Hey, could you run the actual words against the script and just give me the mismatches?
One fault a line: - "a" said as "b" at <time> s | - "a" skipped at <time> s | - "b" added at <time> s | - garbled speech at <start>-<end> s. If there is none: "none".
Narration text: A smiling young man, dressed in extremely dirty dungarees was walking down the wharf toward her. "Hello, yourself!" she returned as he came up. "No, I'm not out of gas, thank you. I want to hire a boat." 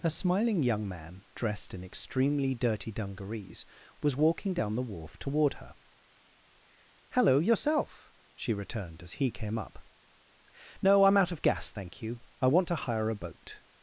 - "not" skipped at 11.2 s